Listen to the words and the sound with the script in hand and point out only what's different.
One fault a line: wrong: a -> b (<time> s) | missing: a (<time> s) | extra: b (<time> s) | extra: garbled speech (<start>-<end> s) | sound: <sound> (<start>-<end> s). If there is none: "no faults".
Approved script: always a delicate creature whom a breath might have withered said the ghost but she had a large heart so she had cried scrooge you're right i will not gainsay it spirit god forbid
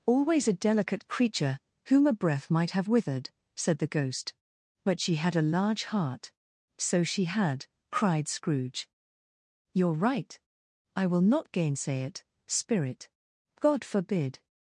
no faults